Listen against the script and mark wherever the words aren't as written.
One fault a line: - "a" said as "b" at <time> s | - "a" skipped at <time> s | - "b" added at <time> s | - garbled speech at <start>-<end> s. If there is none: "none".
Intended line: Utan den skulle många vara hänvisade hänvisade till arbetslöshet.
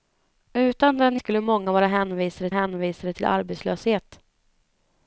none